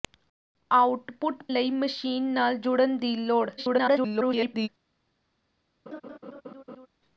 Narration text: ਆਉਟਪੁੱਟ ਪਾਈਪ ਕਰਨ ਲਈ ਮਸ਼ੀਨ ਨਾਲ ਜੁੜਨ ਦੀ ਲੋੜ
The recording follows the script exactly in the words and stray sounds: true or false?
false